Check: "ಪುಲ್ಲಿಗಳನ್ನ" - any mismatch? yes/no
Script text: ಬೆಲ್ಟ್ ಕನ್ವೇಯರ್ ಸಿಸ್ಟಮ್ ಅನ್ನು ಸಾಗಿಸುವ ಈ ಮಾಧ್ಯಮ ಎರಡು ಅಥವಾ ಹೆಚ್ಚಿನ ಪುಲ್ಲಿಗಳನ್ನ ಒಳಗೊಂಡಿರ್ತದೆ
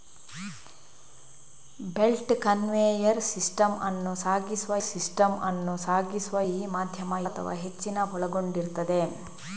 yes